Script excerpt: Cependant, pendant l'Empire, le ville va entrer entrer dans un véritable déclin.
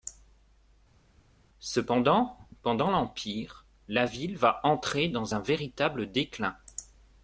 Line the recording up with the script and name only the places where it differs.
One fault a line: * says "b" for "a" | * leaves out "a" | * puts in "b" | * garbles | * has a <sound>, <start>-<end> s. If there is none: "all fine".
* says "la" for "le"
* leaves out "entrer"